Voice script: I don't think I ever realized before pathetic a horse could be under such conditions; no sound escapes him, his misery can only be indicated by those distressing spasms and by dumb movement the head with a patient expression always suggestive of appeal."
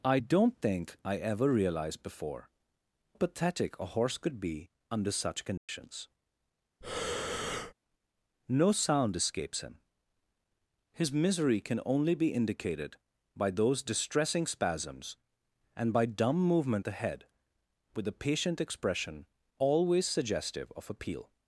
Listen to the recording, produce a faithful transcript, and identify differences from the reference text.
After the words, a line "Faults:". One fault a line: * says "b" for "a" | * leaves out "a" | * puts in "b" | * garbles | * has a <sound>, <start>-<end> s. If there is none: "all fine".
I don't think I ever realized before pathetic a horse could be under such conditions; no sound escapes him, his misery can only be indicated by those distressing spasms and by dumb movement the head with a patient expression always suggestive of appeal."
Faults:
* has a dropout, 5.6-5.7 s
* has a breath, 6.8-7.7 s